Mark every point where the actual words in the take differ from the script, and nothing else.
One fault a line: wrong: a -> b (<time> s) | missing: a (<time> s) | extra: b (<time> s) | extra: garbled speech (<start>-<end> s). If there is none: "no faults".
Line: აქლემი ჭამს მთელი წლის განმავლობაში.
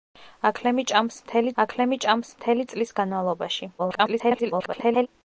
extra: აქლემი ჭამს მთელი (1.6 s)
extra: garbled speech (3.8-5.1 s)